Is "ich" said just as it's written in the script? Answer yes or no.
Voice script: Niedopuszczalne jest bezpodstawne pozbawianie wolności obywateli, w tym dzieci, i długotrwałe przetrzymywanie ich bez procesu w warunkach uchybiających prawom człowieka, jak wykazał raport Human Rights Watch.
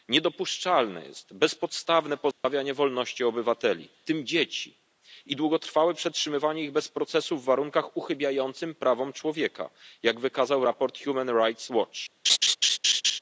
yes